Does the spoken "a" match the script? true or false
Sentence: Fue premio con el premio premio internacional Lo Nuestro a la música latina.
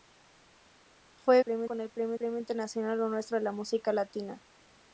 true